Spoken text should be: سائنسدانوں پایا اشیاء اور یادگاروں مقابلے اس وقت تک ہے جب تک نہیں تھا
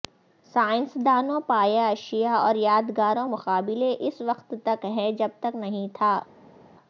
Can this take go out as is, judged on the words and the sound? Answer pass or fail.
pass